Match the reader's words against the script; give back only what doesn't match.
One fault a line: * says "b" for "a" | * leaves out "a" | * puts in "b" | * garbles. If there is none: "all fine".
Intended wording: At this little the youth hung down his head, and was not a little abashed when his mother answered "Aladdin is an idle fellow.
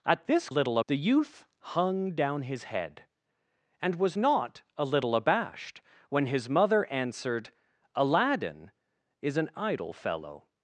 all fine